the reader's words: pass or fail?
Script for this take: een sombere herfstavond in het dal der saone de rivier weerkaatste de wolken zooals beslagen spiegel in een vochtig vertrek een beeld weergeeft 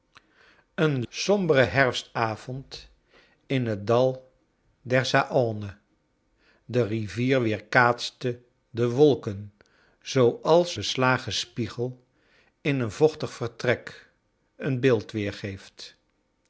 pass